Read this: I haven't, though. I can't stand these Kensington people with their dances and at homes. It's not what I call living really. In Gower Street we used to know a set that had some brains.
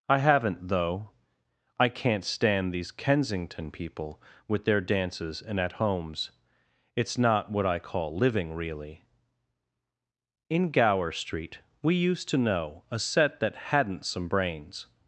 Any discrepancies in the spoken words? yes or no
yes